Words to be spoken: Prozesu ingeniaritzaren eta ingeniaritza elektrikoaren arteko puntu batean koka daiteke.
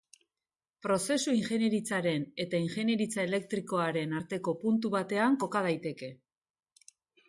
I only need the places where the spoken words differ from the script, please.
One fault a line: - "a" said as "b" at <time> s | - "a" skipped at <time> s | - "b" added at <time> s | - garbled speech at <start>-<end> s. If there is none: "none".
none